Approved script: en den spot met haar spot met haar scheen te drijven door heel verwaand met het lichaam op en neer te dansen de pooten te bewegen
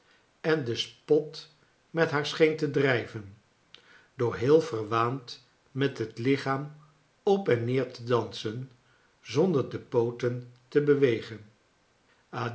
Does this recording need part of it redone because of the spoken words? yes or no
yes